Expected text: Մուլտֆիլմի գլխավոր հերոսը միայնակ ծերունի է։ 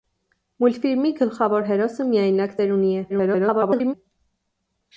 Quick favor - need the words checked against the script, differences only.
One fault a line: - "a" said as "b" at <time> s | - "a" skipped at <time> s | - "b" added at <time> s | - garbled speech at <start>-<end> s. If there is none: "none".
- garbled speech at 3.1-3.9 s